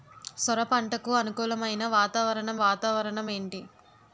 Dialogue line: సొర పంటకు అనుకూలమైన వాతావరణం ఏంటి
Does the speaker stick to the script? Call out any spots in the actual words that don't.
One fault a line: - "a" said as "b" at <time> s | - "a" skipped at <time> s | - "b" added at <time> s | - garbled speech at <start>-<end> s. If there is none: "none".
- "వాతావరణం" added at 2.6 s